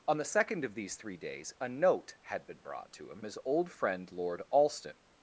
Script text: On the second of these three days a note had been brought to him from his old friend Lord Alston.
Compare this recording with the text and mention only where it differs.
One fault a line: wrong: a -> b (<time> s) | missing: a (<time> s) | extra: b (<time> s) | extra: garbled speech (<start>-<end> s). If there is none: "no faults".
missing: from (3.2 s)